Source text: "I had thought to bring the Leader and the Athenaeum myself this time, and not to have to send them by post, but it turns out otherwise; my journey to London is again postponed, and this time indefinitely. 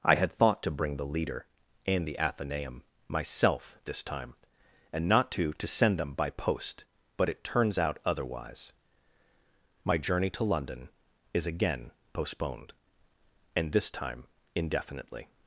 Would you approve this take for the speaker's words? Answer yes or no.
no